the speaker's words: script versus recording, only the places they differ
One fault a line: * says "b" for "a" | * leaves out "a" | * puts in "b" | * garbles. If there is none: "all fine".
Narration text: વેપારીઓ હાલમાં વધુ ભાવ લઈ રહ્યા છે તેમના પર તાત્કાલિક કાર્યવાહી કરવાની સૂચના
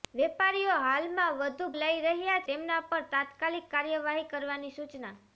* leaves out "ભાવ"
* leaves out "છે"